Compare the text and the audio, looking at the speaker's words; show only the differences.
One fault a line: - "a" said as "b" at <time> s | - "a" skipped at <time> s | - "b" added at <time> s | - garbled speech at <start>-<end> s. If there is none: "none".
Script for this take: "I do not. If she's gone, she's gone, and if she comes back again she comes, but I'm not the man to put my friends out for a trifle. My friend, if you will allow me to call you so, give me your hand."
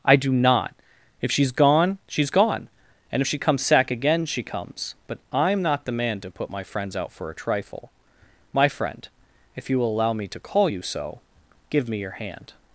- "back" said as "sack" at 3.6 s